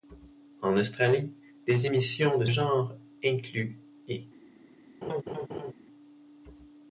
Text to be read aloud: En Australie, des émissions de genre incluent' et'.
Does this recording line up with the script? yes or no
yes